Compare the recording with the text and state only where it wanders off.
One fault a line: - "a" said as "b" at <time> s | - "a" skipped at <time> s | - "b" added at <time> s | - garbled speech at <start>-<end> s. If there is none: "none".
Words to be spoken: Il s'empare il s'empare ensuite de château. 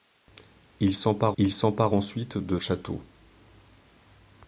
none